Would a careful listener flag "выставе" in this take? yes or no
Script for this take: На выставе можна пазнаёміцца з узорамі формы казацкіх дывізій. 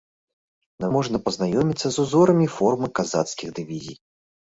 yes